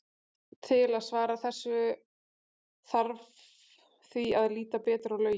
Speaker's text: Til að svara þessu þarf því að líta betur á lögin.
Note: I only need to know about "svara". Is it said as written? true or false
true